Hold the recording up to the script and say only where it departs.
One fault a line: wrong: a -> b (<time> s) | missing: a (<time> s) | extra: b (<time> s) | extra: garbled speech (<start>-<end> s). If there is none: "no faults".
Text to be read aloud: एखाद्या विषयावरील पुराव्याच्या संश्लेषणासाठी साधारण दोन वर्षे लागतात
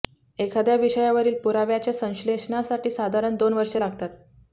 no faults